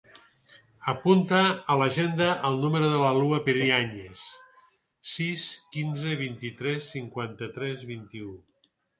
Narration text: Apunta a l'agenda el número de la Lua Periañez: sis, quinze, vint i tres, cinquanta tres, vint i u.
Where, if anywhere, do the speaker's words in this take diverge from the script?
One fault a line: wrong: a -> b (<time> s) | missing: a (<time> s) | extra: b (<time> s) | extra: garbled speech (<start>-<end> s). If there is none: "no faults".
no faults